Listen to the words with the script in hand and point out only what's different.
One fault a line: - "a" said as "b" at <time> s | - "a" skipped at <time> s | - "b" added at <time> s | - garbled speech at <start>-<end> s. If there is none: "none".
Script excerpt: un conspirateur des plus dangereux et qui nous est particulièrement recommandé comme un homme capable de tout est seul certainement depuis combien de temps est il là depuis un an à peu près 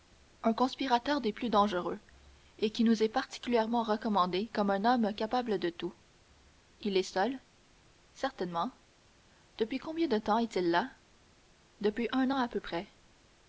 - "il" added at 6.8 s